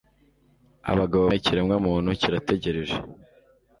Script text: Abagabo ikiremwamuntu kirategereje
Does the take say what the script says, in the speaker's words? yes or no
yes